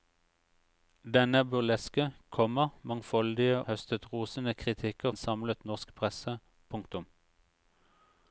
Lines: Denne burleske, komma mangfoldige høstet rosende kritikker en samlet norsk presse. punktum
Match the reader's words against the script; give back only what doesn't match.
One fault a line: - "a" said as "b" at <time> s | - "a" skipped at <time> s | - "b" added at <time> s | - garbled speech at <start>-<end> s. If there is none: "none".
none